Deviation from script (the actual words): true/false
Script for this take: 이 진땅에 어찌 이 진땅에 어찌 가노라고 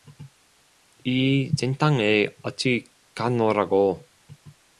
true